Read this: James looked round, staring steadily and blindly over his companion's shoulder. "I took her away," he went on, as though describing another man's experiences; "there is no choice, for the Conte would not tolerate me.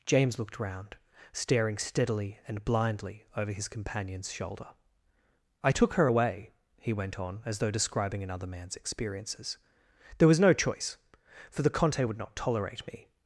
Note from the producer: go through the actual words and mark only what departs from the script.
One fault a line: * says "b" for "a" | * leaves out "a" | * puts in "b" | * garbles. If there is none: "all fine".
* says "was" for "is"